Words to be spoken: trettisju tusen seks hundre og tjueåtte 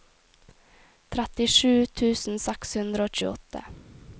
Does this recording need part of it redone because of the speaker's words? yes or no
no